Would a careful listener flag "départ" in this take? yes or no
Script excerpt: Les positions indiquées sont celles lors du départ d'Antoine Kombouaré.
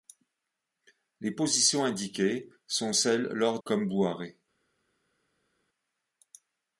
yes